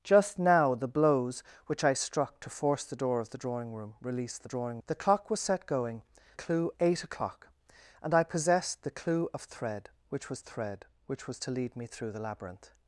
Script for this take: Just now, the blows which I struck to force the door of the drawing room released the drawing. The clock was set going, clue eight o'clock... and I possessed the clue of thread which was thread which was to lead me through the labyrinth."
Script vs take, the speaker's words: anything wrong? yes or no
no